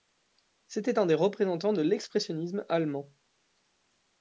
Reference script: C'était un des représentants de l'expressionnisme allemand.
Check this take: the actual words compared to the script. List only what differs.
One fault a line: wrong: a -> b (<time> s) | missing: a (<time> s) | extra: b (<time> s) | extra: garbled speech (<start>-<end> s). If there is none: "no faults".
no faults